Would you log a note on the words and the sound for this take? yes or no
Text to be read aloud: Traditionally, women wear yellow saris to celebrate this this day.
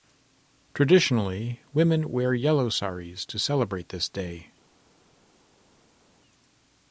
yes